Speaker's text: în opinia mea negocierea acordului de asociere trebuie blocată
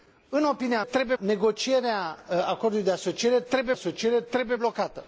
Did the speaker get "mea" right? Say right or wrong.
wrong